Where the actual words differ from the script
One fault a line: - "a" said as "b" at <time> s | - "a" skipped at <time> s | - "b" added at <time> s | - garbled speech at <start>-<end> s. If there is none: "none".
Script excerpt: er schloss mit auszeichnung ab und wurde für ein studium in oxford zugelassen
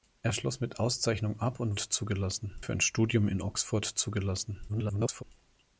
- "wurde" said as "zugelassen" at 1.8 s
- garbled speech at 4.7-5.2 s